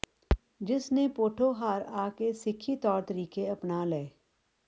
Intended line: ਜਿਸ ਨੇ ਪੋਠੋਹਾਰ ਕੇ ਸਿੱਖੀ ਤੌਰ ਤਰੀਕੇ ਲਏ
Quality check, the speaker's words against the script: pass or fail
fail